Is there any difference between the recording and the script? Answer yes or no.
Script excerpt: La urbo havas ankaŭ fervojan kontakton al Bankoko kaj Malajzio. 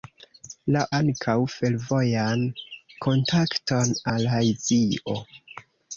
yes